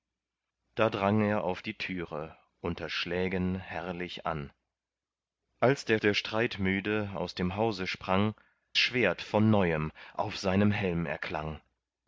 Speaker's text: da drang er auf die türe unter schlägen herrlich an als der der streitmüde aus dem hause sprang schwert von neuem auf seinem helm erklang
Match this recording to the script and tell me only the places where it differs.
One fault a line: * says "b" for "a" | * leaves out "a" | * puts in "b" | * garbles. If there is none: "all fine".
all fine